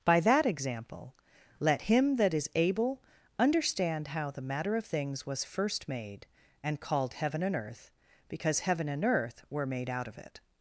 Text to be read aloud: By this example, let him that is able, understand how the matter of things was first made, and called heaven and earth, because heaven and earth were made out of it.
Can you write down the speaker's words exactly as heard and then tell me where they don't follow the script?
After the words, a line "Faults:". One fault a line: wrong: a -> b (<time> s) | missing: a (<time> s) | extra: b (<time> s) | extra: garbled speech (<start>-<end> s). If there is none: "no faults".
By that example, let him that is able, understand how the matter of things was first made, and called heaven and earth, because heaven and earth were made out of it.
Faults:
wrong: this -> that (0.2 s)